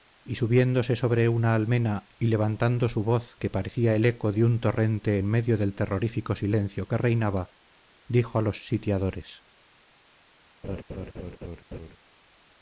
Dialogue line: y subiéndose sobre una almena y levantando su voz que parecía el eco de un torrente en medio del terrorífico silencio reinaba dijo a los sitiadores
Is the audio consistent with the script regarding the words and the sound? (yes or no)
no